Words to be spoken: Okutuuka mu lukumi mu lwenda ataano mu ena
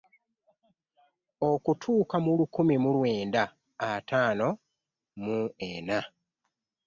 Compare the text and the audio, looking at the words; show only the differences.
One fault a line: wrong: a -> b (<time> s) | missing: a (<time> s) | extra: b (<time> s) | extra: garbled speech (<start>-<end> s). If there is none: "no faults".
no faults